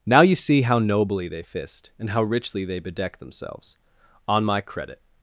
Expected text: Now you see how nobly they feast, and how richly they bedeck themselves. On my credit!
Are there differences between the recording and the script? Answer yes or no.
yes